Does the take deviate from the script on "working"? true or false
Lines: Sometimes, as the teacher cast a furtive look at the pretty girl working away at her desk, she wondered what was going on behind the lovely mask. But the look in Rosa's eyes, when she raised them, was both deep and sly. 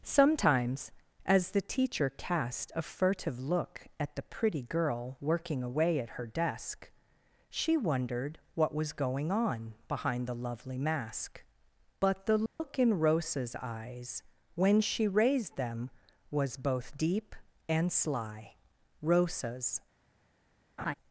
false